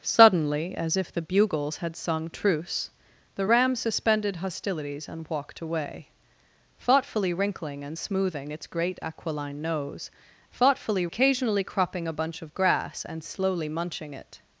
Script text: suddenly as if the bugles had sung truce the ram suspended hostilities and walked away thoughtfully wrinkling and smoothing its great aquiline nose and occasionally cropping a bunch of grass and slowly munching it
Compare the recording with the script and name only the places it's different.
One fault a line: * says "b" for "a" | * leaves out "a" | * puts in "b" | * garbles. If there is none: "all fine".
* says "thoughtfully" for "and"